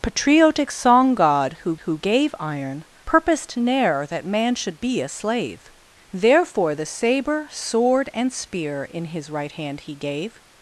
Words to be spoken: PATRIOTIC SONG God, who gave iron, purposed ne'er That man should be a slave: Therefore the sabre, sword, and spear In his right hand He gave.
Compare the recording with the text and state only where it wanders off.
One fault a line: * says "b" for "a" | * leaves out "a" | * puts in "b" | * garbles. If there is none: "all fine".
* puts in "who"